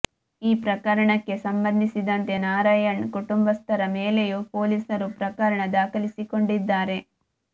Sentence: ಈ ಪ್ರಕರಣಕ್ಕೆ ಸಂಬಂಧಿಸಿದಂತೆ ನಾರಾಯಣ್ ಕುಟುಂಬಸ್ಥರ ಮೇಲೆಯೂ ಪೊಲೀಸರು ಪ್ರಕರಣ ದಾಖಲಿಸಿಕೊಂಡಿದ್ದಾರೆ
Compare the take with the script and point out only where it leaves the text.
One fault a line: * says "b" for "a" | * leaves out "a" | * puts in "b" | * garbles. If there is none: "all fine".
all fine